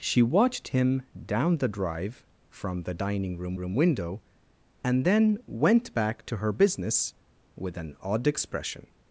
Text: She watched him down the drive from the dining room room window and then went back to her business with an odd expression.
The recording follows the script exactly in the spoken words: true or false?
true